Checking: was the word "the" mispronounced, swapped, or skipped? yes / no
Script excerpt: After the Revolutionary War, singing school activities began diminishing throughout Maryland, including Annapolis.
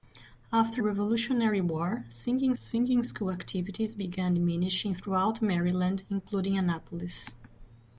yes